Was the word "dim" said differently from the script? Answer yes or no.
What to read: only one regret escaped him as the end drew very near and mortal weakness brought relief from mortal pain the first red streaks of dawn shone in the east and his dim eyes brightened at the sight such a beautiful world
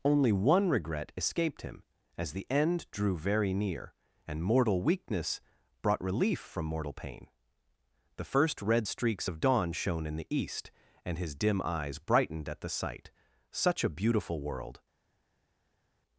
no